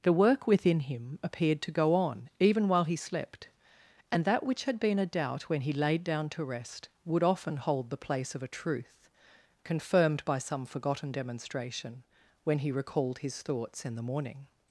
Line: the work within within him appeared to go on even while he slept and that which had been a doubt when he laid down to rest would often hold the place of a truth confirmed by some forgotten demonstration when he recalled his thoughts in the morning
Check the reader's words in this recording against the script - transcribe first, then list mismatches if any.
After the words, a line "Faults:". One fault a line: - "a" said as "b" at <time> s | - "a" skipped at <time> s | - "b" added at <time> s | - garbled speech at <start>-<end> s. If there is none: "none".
the work within him appeared to go on even while he slept and that which had been a doubt when he laid down to rest would often hold the place of a truth confirmed by some forgotten demonstration when he recalled his thoughts in the morning
Faults:
- "within" skipped at 0.8 s